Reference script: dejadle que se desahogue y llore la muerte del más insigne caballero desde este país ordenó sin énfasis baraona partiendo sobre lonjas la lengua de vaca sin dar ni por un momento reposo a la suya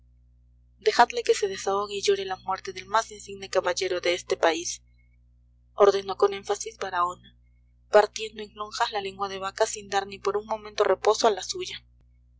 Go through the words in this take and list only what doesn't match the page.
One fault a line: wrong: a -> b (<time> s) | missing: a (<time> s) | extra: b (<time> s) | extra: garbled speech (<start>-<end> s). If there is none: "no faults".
wrong: desde -> de (4.0 s)
wrong: sin -> con (6.2 s)
wrong: sobre -> en (8.4 s)